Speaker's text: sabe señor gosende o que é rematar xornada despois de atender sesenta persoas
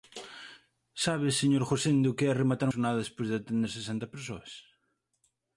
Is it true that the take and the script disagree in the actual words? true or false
false